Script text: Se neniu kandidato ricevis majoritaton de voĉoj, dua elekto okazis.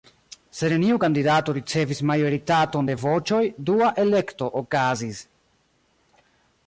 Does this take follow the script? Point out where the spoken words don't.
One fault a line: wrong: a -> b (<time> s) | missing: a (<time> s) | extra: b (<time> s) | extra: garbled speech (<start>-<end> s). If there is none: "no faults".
no faults